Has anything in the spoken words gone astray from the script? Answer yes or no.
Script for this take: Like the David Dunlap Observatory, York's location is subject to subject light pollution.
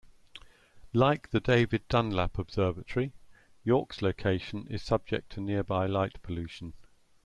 yes